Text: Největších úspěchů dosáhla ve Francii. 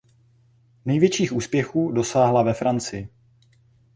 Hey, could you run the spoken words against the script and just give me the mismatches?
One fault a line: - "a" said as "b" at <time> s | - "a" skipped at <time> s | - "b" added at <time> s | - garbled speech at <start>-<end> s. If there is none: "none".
none